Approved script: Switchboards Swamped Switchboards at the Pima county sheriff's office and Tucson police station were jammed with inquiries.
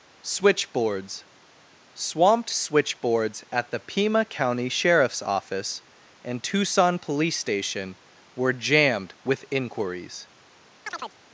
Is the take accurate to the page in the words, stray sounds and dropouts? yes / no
no